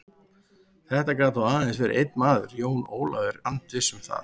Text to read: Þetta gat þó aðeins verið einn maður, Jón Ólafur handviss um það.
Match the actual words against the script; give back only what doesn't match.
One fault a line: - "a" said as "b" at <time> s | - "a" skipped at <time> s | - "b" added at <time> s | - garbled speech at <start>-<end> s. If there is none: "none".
none